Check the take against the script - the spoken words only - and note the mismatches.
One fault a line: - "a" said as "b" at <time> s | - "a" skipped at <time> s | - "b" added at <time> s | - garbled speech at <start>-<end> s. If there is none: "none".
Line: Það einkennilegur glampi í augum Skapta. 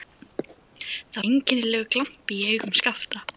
none